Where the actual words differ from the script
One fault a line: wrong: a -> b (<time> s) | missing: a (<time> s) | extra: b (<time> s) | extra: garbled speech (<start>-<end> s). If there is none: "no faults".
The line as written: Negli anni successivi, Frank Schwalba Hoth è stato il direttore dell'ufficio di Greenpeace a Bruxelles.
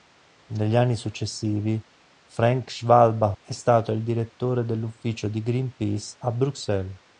missing: Hoth (3.4 s)